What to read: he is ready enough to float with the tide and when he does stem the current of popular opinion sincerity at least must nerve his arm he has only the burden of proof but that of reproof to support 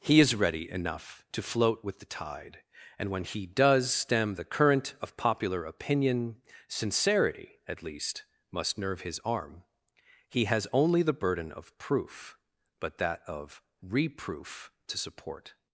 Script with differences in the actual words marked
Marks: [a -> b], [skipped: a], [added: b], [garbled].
he is ready enough to float with the tide and when he does stem the current of popular opinion sincerity at least must nerve his arm he has only the burden of proof but that of reproof to support